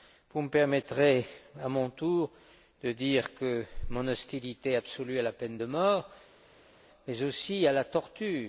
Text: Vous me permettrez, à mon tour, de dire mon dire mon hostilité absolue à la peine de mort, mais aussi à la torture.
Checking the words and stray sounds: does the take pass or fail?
fail